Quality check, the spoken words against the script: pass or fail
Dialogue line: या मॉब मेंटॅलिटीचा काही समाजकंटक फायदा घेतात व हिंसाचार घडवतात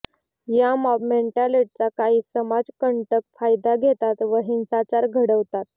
pass